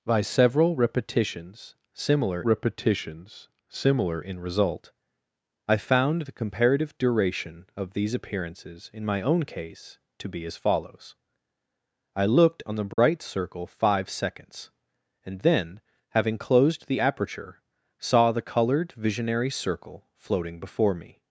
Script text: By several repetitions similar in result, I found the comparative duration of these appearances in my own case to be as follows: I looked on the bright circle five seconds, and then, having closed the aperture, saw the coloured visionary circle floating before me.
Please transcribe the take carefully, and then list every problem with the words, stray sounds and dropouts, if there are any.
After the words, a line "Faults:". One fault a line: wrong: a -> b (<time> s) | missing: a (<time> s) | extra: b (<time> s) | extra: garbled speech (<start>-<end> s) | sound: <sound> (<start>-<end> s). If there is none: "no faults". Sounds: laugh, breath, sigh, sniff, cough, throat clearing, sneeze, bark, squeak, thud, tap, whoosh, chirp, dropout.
By several repetitions similar repetitions similar in result, I found the comparative duration of these appearances in my own case to be as follows: I looked on the bright circle five seconds, and then, having closed the aperture, saw the coloured visionary circle floating before me.
Faults:
extra: repetitions similar (2.4 s)
sound: dropout (12.9-13.0 s)